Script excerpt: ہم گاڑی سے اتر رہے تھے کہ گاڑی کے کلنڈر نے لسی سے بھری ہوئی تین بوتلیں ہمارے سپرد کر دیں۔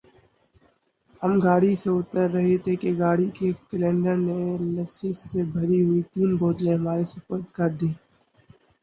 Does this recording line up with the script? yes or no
yes